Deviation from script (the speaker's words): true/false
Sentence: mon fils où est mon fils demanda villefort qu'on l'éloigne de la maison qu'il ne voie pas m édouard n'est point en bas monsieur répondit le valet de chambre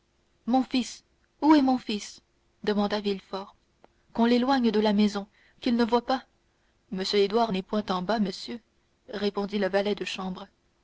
false